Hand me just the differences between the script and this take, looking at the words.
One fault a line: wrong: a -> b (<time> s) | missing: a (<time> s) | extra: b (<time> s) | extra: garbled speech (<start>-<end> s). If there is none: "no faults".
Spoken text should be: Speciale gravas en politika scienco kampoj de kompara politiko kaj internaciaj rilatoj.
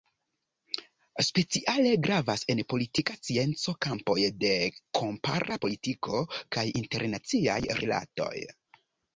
no faults